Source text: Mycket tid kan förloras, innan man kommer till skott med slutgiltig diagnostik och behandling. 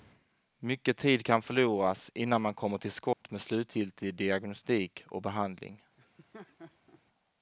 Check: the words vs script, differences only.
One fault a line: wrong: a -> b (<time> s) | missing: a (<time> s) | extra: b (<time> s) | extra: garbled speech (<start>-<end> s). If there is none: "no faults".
no faults